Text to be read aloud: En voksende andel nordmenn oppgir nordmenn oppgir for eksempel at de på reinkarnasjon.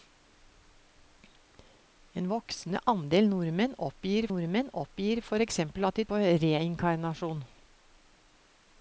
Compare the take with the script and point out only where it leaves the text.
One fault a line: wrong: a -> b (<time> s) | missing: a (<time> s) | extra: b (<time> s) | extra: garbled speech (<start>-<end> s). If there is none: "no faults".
no faults